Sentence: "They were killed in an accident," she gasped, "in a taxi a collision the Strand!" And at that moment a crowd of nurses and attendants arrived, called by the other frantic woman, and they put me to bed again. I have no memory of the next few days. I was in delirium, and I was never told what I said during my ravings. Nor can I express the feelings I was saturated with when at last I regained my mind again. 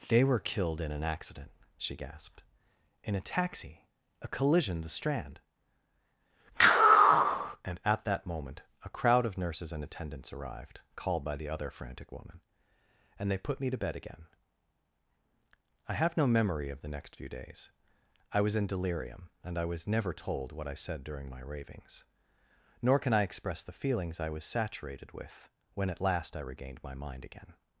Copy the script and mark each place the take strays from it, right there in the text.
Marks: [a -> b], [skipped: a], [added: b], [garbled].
"They were killed in an accident," she gasped, "in a taxi a collision the Strand!" And at that moment a crowd of nurses and attendants arrived, called by the other frantic woman, and they put me to bed again. I have no memory of the next few days. I was in delirium, and I was never told what I said during my ravings. Nor can I express the feelings I was saturated with when at last I regained my mind again.